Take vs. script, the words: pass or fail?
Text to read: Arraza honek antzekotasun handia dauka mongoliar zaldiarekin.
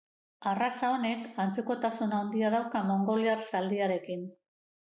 pass